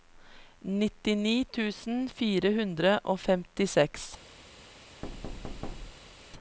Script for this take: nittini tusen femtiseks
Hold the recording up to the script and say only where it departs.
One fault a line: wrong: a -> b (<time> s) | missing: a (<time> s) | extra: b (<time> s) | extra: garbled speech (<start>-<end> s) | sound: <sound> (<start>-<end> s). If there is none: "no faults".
extra: fire hundre og (2.2 s)
sound: thud (5.0-6.3 s)